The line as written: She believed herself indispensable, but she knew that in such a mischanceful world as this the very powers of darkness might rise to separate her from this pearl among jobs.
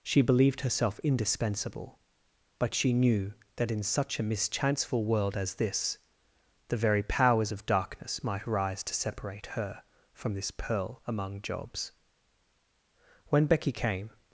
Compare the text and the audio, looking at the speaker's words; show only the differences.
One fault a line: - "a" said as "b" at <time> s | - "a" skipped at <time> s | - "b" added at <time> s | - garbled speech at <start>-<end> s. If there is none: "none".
- "When Becky came" added at 13.3 s